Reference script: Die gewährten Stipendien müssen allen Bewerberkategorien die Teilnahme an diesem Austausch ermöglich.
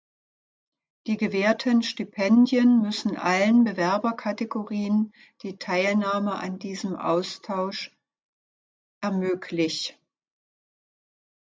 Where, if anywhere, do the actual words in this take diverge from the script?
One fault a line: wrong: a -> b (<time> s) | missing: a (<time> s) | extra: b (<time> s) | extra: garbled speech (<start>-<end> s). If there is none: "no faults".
no faults